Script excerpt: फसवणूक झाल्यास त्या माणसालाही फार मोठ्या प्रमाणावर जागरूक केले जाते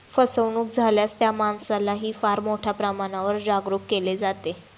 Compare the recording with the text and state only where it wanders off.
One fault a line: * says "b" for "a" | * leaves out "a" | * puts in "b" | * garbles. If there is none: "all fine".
all fine